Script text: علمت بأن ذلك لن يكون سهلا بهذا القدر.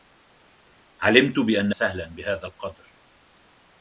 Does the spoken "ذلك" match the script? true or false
false